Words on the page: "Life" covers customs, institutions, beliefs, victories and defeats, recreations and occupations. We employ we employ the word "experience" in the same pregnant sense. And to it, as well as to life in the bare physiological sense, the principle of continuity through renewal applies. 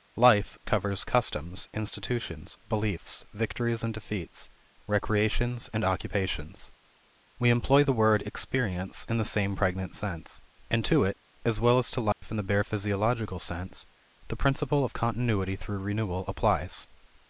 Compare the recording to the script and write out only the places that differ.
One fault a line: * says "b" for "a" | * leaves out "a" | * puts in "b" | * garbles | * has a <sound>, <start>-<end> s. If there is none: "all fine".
* leaves out "we employ"
* has a dropout, 12.1-12.2 s